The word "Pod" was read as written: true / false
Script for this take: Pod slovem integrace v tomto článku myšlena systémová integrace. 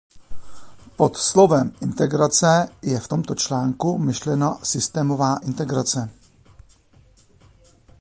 true